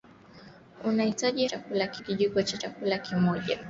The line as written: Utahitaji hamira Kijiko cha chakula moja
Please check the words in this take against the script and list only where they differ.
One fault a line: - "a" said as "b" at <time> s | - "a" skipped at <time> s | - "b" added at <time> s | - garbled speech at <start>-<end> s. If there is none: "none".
- "hamira" said as "chakula" at 1.4 s